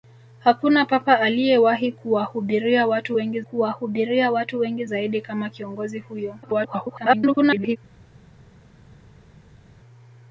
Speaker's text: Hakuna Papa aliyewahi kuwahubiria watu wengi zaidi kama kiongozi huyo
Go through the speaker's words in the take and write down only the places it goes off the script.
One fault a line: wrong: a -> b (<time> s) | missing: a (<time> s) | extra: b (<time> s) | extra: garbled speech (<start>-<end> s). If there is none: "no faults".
extra: kuwahubiria watu wengi (3.4 s)
extra: garbled speech (6.4-7.8 s)